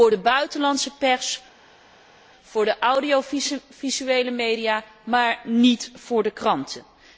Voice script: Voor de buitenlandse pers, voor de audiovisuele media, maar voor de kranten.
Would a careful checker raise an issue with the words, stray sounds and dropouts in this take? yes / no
yes